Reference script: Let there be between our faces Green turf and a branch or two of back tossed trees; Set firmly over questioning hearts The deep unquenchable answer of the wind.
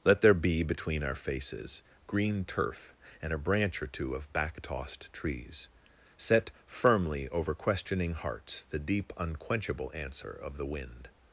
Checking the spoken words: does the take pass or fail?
pass